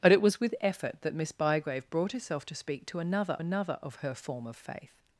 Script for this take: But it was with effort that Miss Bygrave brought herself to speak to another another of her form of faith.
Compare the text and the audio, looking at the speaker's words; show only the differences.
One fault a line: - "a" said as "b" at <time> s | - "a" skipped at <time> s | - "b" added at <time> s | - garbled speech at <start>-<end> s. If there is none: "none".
none